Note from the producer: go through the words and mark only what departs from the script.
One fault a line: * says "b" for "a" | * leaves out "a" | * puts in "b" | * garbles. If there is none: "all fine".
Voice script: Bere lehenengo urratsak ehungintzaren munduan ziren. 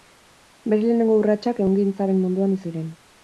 all fine